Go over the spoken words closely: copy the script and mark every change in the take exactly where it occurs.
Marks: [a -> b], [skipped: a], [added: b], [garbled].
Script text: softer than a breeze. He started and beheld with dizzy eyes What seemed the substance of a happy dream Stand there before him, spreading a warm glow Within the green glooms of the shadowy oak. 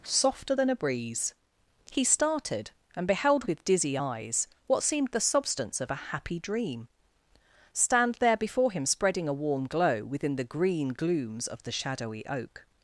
softer than a breeze. He started and beheld with dizzy eyes What seemed the substance of a happy dream Stand there before him, spreading a warm glow Within the green glooms of the shadowy oak.